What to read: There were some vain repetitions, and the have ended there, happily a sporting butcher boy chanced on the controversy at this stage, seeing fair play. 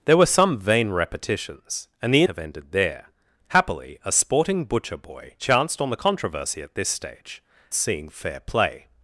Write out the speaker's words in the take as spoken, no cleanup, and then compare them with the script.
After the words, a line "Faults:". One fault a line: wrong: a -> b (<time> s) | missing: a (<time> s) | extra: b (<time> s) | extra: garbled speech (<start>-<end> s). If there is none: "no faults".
There were some vain repetitions, and the have ended there, happily a sporting butcher boy chanced on the controversy at this stage, seeing fair play.
Faults:
no faults